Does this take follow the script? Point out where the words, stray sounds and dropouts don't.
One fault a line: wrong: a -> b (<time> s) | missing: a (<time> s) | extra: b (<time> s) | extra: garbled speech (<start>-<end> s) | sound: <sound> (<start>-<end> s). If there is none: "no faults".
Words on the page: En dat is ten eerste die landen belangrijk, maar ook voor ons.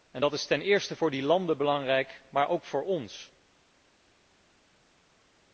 extra: voor (0.9 s)